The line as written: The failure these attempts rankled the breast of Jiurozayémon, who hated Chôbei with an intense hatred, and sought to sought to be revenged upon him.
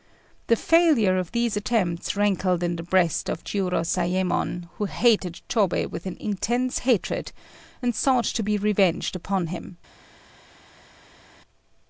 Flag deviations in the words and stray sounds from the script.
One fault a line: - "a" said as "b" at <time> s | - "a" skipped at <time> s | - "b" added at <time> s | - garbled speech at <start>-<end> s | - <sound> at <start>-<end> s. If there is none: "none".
- "of" added at 1.2 s
- "in" added at 2.6 s
- "sought to" skipped at 8.4 s